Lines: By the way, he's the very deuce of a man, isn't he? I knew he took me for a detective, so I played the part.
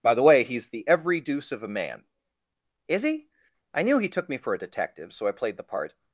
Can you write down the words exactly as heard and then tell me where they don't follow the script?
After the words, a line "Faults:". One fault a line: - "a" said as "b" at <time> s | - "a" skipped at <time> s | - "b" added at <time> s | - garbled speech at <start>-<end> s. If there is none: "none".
By the way, he's the every deuce of a man, is he? I knew he took me for a detective, so I played the part.
Faults:
- "very" said as "every" at 0.9 s
- "isn't" said as "is" at 2.9 s